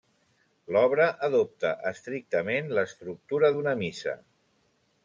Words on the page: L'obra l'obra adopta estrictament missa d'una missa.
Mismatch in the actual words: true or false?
true